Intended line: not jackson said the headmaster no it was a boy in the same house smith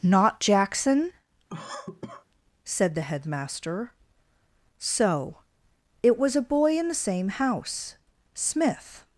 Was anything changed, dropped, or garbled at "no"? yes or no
yes